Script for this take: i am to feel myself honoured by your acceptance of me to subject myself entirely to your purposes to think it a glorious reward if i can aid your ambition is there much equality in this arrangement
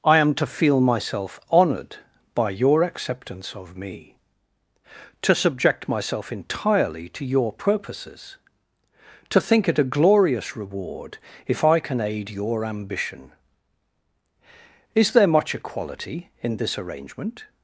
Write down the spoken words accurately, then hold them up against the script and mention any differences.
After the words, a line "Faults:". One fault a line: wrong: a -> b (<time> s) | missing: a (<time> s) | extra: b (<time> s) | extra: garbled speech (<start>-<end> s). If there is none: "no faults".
i am to feel myself honoured by your acceptance of me to subject myself entirely to your purposes to think it a glorious reward if i can aid your ambition is there much equality in this arrangement
Faults:
no faults